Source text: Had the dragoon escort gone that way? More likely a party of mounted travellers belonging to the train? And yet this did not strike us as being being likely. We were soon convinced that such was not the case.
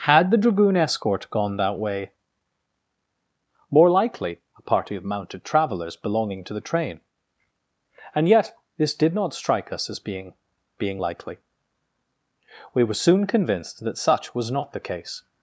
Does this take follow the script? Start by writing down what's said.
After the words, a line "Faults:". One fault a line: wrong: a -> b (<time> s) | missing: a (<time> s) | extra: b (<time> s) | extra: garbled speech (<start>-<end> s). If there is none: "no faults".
Had the dragoon escort gone that way? More likely a party of mounted travellers belonging to the train? And yet this did not strike us as being being likely. We were soon convinced that such was not the case.
Faults:
no faults